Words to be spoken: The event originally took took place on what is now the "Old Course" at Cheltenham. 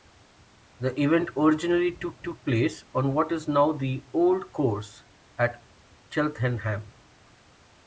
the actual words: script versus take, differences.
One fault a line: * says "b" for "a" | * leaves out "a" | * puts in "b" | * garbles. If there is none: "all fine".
all fine